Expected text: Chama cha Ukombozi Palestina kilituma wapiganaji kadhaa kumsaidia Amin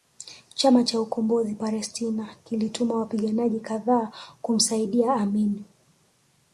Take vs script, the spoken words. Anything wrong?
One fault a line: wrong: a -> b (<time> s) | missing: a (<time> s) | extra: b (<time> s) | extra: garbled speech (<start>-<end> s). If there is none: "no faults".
no faults